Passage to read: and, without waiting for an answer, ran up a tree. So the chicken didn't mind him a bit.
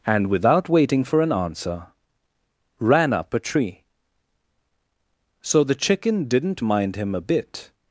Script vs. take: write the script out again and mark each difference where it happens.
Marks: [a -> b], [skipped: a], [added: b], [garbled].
and, without waiting for an answer, ran up a tree. So the chicken didn't mind him a bit.